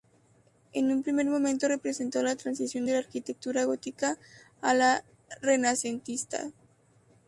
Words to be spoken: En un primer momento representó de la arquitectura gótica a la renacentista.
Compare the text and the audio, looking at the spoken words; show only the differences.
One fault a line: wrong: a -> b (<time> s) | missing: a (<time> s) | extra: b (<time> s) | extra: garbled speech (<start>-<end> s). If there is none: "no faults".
extra: la transición (2.2 s)